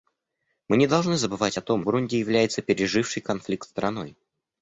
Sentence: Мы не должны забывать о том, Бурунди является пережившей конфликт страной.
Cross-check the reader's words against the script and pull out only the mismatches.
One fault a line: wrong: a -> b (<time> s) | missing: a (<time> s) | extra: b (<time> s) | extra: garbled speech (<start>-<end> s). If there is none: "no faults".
no faults